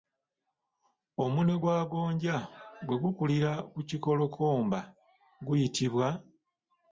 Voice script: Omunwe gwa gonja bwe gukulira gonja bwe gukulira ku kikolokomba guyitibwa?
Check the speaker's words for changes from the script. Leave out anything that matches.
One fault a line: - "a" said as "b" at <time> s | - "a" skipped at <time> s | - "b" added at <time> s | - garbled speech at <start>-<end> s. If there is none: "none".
- "gonja bwe gukulira" skipped at 3.5 s